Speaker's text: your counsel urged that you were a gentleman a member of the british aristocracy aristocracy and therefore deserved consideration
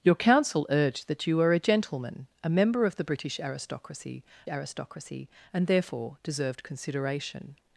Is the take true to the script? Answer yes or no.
yes